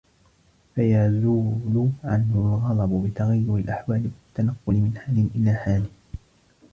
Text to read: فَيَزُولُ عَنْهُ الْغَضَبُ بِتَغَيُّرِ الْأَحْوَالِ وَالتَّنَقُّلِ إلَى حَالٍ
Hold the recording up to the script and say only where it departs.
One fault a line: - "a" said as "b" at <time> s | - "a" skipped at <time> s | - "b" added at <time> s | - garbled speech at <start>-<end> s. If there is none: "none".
- "مِنْ حَالٍ" added at 4.7 s